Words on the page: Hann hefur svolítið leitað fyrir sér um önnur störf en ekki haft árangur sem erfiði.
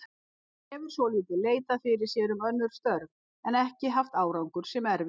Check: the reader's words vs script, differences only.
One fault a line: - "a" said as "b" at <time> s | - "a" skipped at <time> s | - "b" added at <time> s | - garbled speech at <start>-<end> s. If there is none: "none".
none